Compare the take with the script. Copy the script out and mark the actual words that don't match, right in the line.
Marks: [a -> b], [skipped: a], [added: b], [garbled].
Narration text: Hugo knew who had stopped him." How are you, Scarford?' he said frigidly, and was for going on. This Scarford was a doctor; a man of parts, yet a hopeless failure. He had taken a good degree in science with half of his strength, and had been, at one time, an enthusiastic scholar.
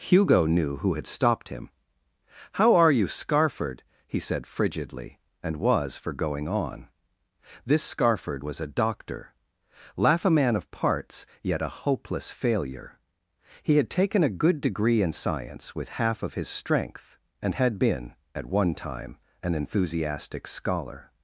Hugo knew who had stopped him." How are you, Scarford?' he said frigidly, and was for going on. This Scarford was a doctor; [added: laugh] a man of parts, yet a hopeless failure. He had taken a good degree in science with half of his strength, and had been, at one time, an enthusiastic scholar.